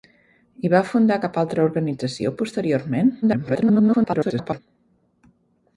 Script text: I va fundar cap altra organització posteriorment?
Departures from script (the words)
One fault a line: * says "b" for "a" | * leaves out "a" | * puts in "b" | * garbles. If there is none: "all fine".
* garbles